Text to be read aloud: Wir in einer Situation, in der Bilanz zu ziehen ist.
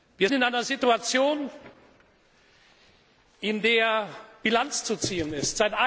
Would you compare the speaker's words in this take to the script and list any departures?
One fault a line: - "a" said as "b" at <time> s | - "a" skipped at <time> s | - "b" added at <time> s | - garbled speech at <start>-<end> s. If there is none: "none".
none